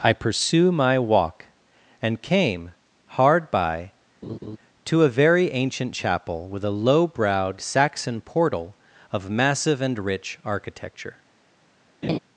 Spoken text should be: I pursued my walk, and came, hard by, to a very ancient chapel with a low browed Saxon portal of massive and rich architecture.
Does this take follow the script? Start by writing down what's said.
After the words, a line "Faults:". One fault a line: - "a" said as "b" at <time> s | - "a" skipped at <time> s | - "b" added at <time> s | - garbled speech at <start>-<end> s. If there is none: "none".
I pursue my walk, and came, hard by, to a very ancient chapel with a low browed Saxon portal of massive and rich architecture.
Faults:
- "pursued" said as "pursue" at 0.1 s